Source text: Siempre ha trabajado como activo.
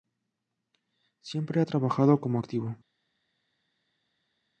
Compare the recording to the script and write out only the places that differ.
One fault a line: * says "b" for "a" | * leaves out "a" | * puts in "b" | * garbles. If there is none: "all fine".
all fine